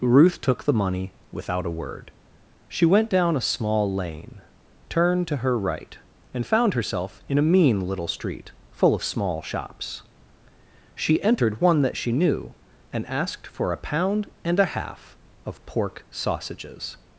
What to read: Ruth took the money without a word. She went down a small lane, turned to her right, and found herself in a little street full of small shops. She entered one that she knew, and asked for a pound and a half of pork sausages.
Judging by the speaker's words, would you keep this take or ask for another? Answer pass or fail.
fail